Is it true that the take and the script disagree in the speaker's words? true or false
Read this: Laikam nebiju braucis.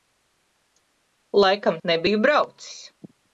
false